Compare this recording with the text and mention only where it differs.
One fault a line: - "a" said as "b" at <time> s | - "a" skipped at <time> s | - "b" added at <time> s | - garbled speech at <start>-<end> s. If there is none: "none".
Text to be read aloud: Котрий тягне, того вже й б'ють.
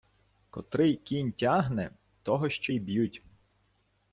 - "кінь" added at 0.9 s
- "вже" said as "ще" at 2.5 s